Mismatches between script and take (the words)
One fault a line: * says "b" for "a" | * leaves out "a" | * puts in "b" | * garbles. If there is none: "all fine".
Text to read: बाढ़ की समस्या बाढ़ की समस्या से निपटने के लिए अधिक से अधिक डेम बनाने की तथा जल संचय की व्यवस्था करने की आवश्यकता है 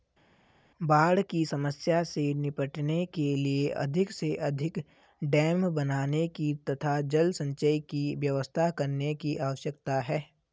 * leaves out "बाढ़ की समस्या"